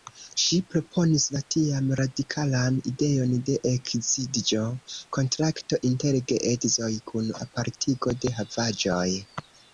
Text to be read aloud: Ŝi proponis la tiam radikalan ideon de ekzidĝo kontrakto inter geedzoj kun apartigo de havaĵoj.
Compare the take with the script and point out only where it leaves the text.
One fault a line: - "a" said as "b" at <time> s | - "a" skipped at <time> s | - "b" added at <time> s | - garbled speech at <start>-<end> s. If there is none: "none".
none